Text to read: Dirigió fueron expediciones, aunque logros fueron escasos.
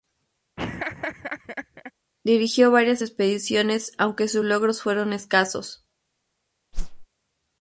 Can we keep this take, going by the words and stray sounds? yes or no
no